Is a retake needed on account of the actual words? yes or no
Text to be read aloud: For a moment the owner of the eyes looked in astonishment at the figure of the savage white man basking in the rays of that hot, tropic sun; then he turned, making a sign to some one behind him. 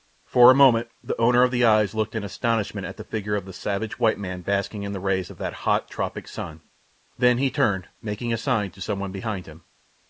no